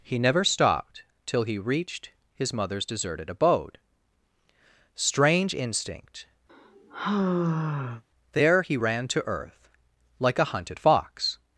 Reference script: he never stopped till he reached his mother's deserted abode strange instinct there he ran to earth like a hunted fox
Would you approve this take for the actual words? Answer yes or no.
yes